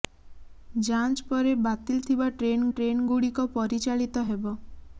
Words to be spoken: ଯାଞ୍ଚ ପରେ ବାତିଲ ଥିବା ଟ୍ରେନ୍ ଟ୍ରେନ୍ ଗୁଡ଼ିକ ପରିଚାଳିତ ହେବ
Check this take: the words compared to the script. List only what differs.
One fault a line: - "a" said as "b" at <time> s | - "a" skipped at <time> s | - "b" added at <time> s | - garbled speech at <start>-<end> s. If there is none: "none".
none